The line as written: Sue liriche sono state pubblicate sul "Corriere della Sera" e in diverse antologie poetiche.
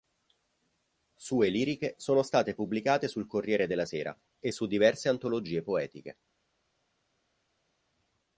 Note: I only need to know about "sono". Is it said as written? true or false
true